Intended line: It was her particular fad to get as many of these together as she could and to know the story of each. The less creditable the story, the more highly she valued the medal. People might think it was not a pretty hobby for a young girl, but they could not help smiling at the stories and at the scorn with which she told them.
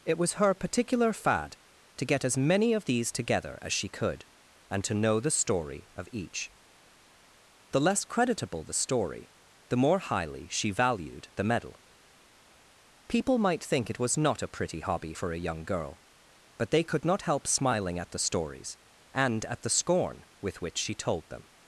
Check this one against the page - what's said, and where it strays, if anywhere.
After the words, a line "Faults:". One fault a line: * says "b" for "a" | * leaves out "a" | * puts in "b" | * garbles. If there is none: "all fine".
It was her particular fad to get as many of these together as she could and to know the story of each. The less creditable the story, the more highly she valued the medal. People might think it was not a pretty hobby for a young girl, but they could not help smiling at the stories and at the scorn with which she told them.
Faults:
all fine